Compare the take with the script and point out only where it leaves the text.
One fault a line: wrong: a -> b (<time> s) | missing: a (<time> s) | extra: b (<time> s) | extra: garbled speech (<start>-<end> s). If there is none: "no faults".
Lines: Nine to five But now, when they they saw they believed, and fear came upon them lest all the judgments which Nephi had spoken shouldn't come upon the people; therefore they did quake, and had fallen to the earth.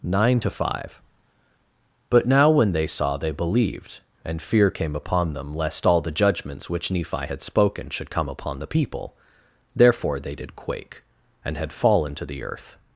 missing: they (2.9 s)
wrong: shouldn't -> should (7.9 s)